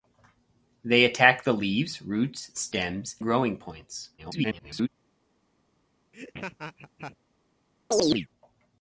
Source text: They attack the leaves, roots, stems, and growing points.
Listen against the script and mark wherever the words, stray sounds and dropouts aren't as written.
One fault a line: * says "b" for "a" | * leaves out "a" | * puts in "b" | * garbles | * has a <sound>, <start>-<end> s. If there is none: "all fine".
* leaves out "and"
* garbles
* has a laugh, 6.1-7.2 s
* has a chirp, 7.9-8.3 s